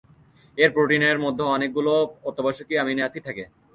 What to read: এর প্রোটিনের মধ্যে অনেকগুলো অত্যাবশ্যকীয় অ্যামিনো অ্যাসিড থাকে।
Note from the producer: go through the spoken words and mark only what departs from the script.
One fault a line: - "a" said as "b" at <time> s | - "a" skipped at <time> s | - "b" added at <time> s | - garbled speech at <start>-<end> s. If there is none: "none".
none